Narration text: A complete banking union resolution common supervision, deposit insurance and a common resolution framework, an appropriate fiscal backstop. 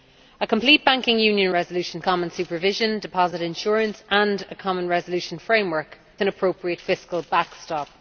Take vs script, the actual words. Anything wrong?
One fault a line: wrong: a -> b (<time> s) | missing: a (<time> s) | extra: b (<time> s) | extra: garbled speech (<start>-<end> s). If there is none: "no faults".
no faults